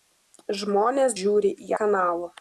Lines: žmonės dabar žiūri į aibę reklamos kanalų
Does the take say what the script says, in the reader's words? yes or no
no